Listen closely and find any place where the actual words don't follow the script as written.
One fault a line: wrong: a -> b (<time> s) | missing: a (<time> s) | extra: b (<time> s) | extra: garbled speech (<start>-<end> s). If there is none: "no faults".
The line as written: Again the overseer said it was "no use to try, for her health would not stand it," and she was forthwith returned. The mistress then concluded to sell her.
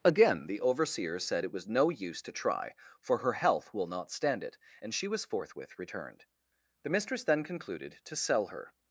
wrong: would -> will (3.7 s)